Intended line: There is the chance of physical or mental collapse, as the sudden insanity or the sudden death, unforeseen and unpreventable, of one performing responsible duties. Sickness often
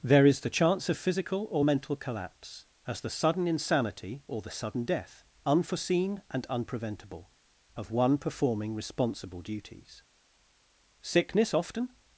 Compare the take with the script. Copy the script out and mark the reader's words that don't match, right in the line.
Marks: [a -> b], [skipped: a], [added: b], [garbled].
There is the chance of physical or mental collapse, as the sudden insanity or the sudden death, unforeseen and unpreventable, of one performing responsible duties. Sickness often